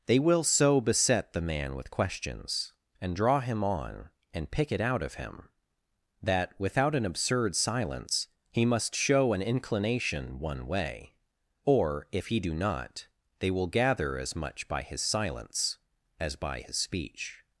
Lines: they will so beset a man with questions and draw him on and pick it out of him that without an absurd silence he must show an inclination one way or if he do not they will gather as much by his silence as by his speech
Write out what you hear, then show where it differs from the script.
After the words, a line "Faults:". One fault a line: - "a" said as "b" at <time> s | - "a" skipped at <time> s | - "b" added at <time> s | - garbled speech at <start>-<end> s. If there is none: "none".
they will so beset the man with questions and draw him on and pick it out of him that without an absurd silence he must show an inclination one way or if he do not they will gather as much by his silence as by his speech
Faults:
- "a" said as "the" at 1.3 s